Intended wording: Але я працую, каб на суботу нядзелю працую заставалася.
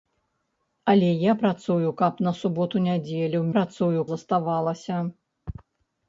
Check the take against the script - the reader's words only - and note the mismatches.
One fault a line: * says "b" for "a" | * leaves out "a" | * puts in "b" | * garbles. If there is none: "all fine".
all fine